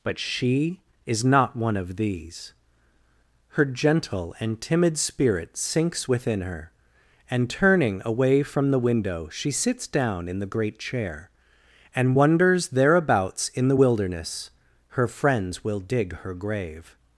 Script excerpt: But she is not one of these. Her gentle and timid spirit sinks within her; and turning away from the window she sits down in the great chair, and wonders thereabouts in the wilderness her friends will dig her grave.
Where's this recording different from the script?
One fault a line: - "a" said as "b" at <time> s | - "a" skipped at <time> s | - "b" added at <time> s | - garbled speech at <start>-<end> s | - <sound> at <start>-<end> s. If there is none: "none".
none